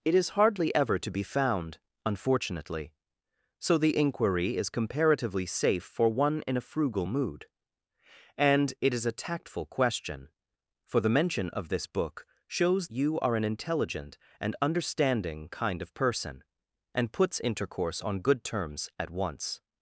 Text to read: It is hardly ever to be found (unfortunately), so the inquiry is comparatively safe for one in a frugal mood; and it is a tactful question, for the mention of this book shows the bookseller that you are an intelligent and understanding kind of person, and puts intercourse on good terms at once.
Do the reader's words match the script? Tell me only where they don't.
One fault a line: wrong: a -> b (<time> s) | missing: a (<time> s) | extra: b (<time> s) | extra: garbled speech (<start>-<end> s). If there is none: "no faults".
missing: the bookseller that (12.9 s)